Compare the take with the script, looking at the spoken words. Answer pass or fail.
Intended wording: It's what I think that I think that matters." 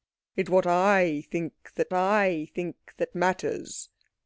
pass